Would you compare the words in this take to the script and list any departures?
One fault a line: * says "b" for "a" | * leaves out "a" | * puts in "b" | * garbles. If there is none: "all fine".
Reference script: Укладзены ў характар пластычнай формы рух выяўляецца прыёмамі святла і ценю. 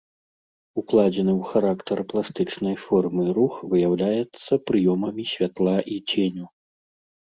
all fine